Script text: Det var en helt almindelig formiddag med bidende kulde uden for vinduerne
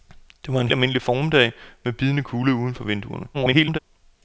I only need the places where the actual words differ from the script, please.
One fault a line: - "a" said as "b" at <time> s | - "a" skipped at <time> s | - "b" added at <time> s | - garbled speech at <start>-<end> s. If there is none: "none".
- "helt" skipped at 0.7 s
- garbled speech at 3.3-3.8 s